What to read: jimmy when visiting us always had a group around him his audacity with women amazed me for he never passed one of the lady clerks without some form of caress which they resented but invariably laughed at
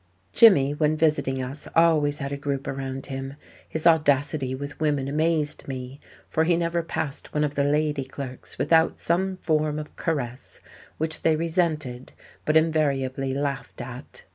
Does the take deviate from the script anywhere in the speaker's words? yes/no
no